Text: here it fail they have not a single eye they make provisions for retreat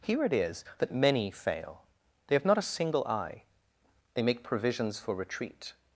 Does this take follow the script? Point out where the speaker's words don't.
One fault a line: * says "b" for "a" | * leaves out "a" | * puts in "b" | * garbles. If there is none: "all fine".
* puts in "is that many"